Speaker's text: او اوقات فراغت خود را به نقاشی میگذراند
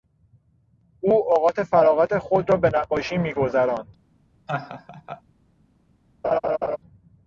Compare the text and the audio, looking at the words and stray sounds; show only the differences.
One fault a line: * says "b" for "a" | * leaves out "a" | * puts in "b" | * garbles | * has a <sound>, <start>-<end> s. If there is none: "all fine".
* has a laugh, 4.5-5.2 s
* has a laugh, 6.2-6.8 s